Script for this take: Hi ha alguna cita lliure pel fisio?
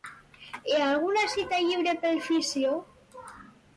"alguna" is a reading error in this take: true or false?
false